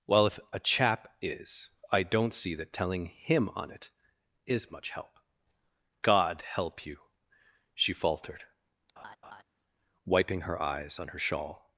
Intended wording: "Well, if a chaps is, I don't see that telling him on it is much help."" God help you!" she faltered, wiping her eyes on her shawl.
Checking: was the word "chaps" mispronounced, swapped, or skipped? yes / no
yes